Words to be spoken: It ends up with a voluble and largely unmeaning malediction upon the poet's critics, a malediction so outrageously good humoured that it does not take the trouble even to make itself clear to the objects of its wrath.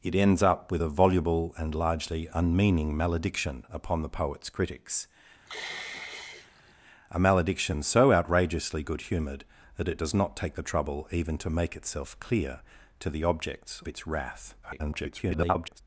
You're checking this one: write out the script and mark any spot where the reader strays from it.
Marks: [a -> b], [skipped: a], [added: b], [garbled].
It ends up with a voluble and largely unmeaning malediction upon the poet's critics, a malediction so outrageously good humoured that it does not take the trouble even to make itself clear to the objects [skipped: of] its wrath. [garbled]